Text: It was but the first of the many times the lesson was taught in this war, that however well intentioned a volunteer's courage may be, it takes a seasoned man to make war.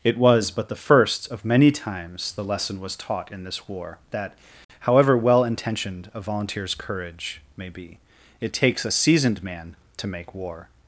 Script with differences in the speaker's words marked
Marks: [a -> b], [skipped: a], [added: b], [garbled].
It was but the first of [skipped: the] many times the lesson was taught in this war, that however well intentioned a volunteer's courage may be, it takes a seasoned man to make war.